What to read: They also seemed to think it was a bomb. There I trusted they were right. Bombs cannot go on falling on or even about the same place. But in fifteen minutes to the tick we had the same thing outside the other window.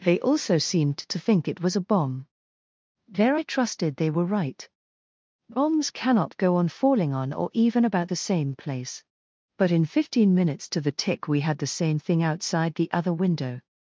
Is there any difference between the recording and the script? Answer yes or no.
no